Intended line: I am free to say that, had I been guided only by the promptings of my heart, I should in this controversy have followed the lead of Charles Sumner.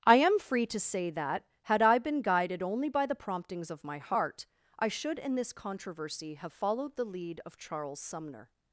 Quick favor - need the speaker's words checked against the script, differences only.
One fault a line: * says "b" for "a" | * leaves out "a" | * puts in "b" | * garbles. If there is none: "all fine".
all fine